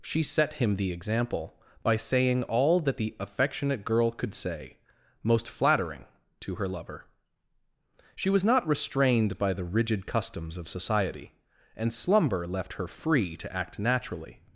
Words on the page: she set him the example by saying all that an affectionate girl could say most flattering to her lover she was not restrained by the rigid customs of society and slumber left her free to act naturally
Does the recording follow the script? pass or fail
fail